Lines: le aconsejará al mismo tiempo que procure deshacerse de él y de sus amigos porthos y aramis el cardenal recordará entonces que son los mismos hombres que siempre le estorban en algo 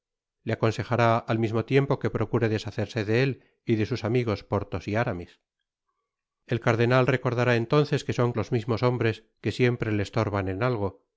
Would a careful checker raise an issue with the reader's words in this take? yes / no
no